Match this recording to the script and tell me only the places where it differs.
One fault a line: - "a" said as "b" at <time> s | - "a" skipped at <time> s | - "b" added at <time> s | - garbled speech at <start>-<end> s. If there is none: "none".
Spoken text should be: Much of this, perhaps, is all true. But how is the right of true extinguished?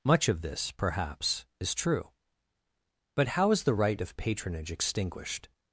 - "all" skipped at 1.8 s
- "true" said as "patronage" at 4.2 s